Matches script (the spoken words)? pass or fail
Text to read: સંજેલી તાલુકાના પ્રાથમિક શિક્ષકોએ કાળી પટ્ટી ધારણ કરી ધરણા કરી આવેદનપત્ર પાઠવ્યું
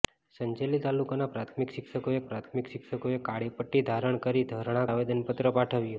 fail